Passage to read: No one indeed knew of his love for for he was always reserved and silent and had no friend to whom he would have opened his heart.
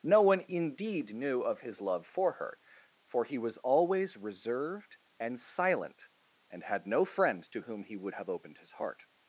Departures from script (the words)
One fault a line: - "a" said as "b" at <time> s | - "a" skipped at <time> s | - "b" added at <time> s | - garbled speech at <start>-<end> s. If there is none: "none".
- "her" added at 2.3 s